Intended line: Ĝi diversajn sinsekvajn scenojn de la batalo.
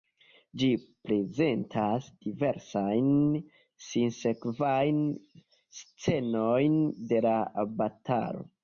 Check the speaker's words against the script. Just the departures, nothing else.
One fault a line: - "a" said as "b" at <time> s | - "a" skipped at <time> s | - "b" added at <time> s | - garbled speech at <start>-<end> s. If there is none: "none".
- "prezentas" added at 1.1 s